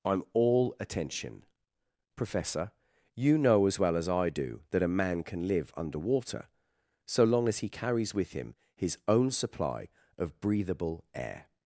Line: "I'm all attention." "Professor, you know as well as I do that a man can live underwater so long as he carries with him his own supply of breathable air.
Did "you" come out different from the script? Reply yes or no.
no